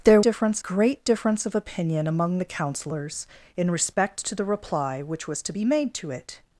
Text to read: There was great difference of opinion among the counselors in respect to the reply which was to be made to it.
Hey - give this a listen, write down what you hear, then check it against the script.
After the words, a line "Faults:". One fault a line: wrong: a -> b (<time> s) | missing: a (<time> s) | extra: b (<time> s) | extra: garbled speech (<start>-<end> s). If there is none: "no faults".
There difference great difference of opinion among the counselors in respect to the reply which was to be made to it.
Faults:
wrong: was -> difference (0.2 s)